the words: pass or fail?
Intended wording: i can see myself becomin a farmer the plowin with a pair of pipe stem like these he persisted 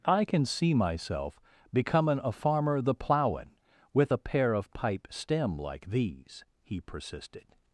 pass